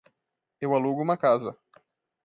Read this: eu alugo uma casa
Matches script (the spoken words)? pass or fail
pass